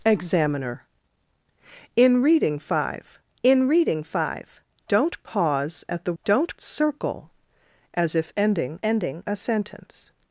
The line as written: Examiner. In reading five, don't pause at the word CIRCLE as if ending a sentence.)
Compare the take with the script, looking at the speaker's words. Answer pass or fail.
fail